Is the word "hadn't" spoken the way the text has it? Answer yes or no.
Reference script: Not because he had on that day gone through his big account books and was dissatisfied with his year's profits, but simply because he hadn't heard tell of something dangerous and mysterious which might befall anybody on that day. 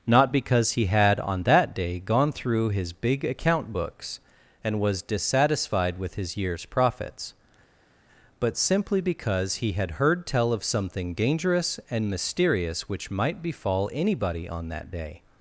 no